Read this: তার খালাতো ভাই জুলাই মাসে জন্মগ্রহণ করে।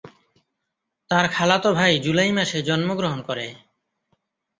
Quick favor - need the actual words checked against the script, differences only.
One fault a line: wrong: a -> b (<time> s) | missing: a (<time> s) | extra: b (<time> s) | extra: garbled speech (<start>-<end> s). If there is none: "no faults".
no faults